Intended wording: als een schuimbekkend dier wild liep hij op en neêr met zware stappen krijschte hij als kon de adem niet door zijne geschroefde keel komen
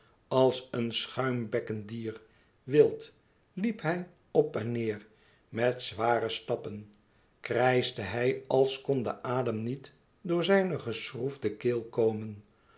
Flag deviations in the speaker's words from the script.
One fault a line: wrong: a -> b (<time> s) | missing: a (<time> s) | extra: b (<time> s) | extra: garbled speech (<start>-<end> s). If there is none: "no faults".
no faults